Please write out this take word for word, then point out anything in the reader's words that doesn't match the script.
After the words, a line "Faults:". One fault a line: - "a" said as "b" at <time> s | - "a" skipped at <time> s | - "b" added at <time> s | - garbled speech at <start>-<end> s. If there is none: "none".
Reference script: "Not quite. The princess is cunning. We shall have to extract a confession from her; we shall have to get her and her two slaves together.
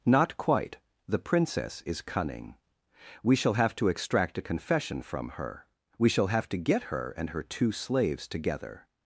"Not quite. The princess is cunning. We shall have to extract a confession from her; we shall have to get her and her two slaves together.
Faults:
none